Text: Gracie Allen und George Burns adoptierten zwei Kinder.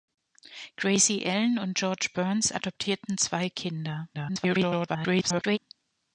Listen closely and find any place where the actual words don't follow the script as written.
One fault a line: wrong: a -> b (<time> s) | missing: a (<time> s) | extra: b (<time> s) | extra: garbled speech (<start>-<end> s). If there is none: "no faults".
extra: garbled speech (4.1-5.6 s)